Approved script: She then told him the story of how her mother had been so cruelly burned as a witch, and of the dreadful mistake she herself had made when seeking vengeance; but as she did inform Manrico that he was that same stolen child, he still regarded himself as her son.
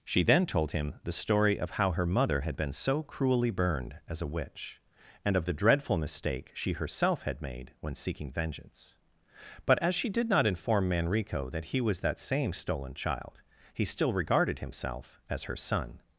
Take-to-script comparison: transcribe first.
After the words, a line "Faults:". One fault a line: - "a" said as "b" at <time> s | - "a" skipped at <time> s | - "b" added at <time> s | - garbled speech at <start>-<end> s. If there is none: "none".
She then told him the story of how her mother had been so cruelly burned as a witch, and of the dreadful mistake she herself had made when seeking vengeance; but as she did not inform Manrico that he was that same stolen child, he still regarded himself as her son.
Faults:
- "not" added at 10.3 s